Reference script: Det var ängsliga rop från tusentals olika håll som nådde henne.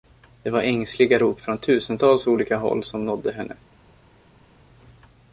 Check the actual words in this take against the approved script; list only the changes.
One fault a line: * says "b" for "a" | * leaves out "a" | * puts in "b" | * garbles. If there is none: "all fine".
all fine